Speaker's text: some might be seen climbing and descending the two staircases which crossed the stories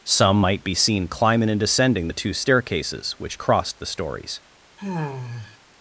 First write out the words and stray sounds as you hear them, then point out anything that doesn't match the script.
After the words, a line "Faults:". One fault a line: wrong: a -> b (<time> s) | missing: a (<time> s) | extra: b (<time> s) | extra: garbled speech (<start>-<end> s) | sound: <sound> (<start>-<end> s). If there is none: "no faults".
some might be seen climbing and descending the two staircases which crossed the stories
Faults:
sound: sigh (4.8-5.6 s)